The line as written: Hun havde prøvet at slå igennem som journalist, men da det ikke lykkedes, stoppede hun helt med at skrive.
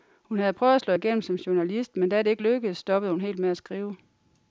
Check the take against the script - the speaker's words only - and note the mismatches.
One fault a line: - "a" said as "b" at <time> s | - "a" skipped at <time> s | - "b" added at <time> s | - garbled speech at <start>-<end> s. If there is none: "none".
none